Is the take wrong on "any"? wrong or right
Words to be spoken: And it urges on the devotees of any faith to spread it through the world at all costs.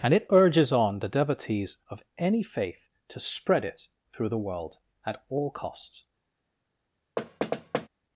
right